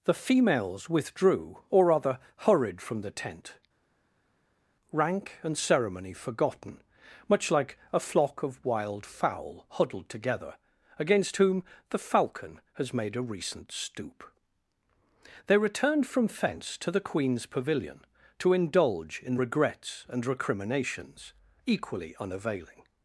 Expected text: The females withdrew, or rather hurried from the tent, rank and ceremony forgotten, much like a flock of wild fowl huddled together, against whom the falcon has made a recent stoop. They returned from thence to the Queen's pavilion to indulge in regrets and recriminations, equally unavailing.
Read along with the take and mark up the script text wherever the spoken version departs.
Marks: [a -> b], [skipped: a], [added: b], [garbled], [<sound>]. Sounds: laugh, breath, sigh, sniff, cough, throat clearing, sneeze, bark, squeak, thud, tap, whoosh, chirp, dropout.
The females withdrew, or rather hurried from the tent, rank and ceremony forgotten, much like a flock of wild fowl huddled together, against whom the falcon has made a recent stoop. They returned from [thence -> fence] to the Queen's pavilion to indulge in regrets and recriminations, equally unavailing.